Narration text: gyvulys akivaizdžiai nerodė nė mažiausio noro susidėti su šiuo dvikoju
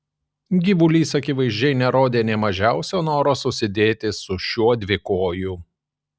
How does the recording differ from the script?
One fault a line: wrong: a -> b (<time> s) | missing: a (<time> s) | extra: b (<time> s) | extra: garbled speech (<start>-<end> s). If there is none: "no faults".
no faults